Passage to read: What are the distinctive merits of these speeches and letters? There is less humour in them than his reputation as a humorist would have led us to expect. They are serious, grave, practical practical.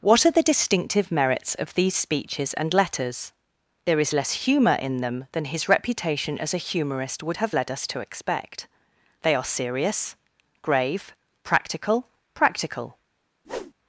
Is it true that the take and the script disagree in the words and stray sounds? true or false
true